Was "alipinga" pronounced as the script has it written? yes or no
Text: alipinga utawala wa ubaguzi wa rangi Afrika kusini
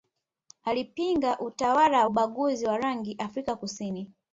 yes